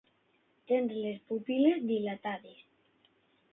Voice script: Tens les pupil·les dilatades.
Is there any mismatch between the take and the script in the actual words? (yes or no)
no